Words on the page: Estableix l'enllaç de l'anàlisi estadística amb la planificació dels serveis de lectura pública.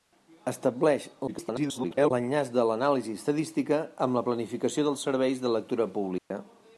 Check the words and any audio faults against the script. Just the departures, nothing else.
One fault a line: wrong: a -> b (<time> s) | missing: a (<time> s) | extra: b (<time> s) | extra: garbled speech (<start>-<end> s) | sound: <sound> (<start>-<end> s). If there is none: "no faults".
extra: garbled speech (1.3-2.1 s)
sound: dropout (6.2-6.3 s)